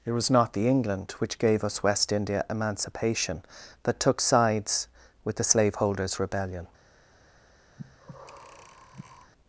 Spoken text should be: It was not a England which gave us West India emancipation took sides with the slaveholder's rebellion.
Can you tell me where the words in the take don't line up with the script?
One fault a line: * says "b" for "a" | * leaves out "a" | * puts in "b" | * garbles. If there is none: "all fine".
* says "the" for "a"
* puts in "that"